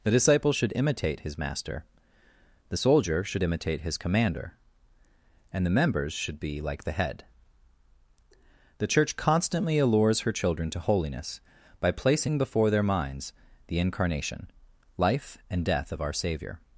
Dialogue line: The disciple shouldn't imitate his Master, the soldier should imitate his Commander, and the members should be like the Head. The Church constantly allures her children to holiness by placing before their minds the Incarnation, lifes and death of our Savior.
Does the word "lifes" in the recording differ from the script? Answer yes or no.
yes